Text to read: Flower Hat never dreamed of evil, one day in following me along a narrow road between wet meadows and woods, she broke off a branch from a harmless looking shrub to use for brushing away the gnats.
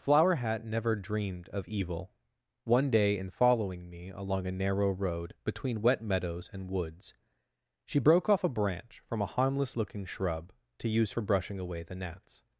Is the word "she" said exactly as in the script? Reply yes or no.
yes